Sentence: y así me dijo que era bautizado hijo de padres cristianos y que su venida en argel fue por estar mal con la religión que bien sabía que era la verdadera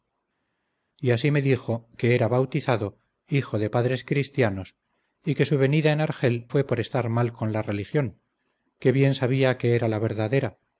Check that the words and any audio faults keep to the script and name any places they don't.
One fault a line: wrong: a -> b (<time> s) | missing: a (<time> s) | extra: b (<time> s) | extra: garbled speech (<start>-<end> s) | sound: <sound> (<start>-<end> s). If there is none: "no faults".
no faults